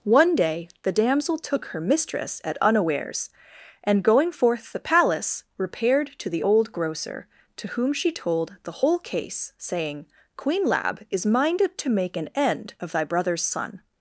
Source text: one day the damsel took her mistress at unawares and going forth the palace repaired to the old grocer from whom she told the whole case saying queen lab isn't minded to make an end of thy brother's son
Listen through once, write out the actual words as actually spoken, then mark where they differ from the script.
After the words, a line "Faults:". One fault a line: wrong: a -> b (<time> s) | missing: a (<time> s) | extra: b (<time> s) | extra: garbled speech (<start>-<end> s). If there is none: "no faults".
one day the damsel took her mistress at unawares and going forth the palace repaired to the old grocer to whom she told the whole case saying queen lab is minded to make an end of thy brother's son
Faults:
wrong: from -> to (7.6 s)
wrong: isn't -> is (11.1 s)